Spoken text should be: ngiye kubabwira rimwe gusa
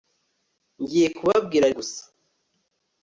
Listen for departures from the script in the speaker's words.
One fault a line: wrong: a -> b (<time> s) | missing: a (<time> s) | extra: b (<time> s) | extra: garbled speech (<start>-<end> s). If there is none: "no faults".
missing: rimwe (1.6 s)